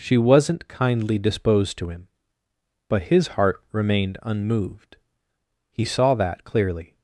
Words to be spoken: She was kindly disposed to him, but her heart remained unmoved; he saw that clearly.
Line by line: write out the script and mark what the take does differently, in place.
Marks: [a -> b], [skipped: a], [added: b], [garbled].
She [was -> wasn't] kindly disposed to him, but [her -> his] heart remained unmoved; he saw that clearly.